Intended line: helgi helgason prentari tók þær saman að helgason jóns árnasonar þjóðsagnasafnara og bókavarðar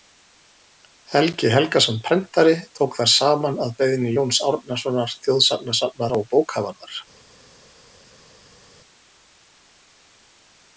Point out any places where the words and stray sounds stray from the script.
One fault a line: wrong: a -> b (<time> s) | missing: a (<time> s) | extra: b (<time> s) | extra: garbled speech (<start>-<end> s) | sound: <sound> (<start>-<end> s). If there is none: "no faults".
wrong: helgason -> beiðni (3.8 s)